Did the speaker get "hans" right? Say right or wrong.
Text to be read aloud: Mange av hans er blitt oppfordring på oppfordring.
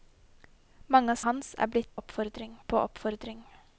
right